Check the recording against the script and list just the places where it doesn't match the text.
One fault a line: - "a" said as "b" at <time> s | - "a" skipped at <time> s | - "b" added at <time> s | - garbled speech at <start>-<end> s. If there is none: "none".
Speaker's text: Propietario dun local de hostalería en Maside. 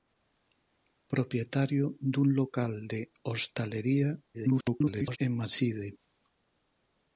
- garbled speech at 4.3-5.2 s